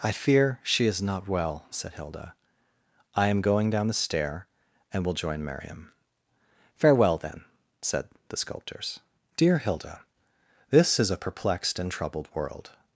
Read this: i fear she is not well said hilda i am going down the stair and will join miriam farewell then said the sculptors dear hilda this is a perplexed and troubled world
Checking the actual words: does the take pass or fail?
pass